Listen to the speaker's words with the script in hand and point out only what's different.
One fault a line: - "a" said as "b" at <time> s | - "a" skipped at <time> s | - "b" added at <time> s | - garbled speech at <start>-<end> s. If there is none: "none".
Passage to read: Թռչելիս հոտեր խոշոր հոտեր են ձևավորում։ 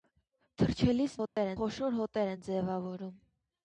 none